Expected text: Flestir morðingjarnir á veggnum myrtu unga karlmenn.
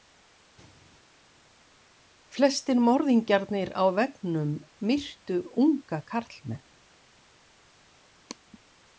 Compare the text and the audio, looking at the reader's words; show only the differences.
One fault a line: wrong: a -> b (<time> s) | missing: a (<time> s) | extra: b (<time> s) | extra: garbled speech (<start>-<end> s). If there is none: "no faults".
no faults